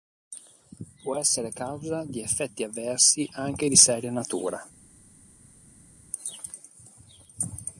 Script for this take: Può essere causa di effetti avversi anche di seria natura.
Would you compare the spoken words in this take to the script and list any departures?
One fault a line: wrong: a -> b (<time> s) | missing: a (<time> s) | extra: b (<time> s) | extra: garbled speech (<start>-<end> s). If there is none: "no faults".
no faults